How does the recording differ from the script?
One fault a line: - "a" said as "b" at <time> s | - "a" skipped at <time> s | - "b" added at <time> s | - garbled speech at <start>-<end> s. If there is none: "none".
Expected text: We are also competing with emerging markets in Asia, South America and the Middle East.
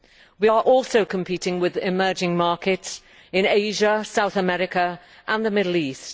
none